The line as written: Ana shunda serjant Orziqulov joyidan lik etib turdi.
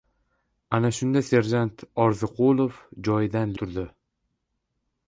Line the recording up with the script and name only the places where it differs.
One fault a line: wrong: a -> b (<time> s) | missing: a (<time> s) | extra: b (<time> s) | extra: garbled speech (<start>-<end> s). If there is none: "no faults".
missing: lik etib (3.5 s)